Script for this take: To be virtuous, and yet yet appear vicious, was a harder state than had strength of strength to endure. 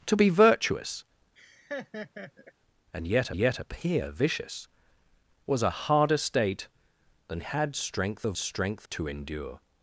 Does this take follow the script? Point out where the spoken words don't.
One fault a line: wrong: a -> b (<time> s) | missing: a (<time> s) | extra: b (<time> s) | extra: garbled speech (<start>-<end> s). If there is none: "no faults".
no faults